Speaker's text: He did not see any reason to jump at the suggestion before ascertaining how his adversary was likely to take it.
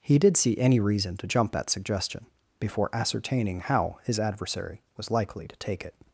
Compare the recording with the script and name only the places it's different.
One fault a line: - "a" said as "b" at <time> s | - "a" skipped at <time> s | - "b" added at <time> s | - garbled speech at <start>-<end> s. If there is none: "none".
- "not" skipped at 0.3 s
- "the" skipped at 1.7 s